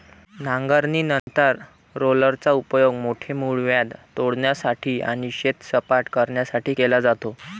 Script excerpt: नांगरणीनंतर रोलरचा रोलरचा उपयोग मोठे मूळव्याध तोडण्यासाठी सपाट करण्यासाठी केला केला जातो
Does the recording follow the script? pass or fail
fail